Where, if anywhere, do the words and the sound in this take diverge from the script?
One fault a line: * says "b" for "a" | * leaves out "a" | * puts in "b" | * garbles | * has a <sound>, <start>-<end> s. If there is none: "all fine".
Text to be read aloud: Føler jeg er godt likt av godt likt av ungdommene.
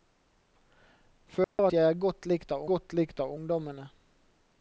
* has a dropout, 1.4-1.6 s